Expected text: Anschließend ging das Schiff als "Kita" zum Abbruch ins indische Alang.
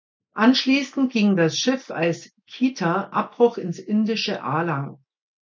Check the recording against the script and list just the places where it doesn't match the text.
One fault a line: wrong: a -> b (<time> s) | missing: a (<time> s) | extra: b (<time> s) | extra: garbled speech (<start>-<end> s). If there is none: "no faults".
missing: zum (3.1 s)